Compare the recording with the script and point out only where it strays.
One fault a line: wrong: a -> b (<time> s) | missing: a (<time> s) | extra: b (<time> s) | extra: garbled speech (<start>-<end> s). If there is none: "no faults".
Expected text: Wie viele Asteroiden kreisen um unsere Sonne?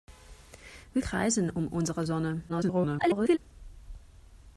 missing: viele Asteroiden (1.0 s)
extra: garbled speech (2.5-3.4 s)